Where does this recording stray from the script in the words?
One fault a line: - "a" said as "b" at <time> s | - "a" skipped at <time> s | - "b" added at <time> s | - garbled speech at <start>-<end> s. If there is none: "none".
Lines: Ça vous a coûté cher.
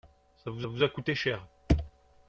- "vous" added at 0.7 s